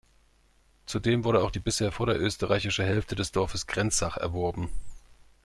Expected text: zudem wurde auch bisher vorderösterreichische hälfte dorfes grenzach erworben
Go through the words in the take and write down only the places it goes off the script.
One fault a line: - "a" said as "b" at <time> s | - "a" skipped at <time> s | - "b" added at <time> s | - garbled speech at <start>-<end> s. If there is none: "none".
- "die" added at 1.5 s
- "des" added at 3.2 s